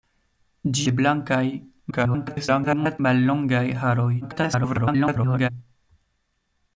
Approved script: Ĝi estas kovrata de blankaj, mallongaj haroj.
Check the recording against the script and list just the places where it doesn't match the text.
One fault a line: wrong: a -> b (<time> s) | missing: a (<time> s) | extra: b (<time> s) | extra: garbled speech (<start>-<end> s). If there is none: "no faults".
missing: estas kovrata (0.8 s)
extra: garbled speech (1.9-3.0 s)
extra: garbled speech (4.2-5.5 s)